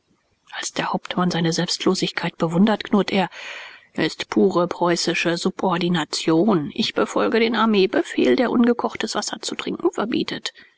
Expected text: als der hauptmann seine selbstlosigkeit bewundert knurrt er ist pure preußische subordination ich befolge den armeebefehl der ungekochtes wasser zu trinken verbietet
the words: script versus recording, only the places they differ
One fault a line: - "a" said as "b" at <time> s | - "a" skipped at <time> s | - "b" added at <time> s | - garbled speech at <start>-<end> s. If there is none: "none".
none